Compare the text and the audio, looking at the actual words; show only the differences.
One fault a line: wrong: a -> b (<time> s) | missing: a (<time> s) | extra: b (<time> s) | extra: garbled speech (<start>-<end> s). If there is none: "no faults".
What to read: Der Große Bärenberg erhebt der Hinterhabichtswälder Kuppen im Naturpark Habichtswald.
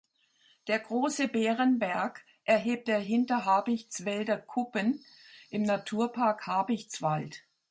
no faults